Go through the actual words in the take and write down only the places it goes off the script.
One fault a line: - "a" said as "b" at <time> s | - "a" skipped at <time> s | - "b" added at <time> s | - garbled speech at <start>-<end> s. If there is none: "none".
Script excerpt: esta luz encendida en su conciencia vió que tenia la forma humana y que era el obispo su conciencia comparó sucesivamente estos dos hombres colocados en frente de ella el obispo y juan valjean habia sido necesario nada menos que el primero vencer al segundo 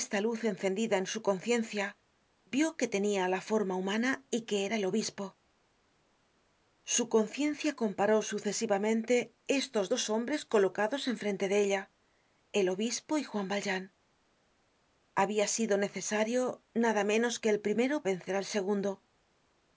none